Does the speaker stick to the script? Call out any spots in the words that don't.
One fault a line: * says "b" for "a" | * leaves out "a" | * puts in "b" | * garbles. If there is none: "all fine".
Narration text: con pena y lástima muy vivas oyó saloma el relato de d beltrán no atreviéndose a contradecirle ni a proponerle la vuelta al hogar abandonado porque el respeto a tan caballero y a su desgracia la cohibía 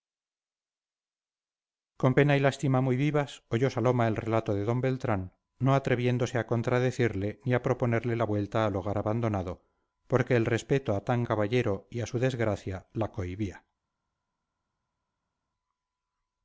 all fine